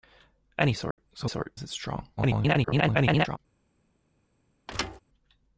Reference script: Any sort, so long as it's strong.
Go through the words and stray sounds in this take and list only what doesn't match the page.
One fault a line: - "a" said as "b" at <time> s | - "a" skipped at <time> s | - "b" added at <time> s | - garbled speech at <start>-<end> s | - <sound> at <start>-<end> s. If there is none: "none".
- dropout at 0.9-1.0 s
- "long" said as "sort" at 1.2 s
- garbled speech at 2.2-3.4 s
- thud at 4.7-5.0 s